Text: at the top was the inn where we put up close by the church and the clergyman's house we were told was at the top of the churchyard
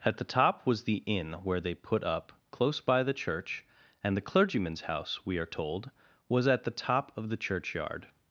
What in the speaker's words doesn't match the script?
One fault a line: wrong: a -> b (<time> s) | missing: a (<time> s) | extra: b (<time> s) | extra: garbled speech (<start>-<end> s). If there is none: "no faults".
wrong: we -> they (1.6 s)
wrong: were -> are (5.4 s)